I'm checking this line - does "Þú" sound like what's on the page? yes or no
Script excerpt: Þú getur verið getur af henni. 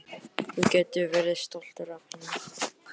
yes